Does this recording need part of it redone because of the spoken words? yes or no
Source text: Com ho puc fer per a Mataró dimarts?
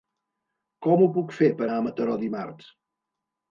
no